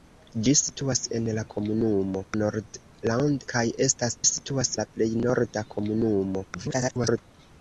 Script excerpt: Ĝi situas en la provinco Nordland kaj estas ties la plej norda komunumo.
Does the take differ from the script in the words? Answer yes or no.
yes